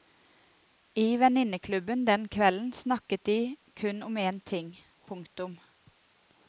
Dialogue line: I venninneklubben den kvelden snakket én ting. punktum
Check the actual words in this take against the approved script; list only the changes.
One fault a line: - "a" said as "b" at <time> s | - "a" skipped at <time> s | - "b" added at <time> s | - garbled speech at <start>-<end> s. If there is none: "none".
- "de kun om" added at 3.2 s